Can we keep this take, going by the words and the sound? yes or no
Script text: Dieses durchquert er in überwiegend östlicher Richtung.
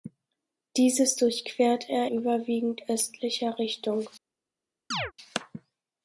no